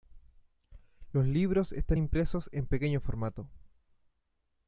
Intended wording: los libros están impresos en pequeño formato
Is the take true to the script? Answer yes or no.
yes